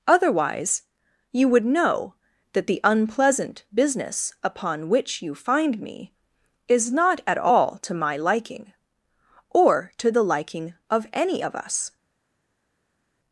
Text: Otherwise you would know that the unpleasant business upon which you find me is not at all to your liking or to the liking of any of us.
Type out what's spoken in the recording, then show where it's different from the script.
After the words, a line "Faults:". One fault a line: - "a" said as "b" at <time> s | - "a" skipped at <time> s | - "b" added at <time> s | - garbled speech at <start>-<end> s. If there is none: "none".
Otherwise you would know that the unpleasant business upon which you find me is not at all to my liking or to the liking of any of us.
Faults:
- "your" said as "my" at 7.9 s